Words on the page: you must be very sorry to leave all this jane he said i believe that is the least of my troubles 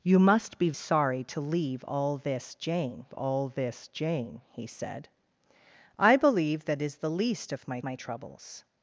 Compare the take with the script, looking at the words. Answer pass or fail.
fail